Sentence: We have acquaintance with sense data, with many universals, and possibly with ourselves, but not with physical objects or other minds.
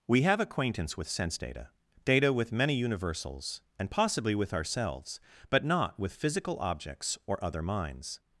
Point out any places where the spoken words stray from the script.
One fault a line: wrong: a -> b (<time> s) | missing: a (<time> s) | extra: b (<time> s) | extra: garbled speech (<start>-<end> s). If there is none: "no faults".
extra: data (2.0 s)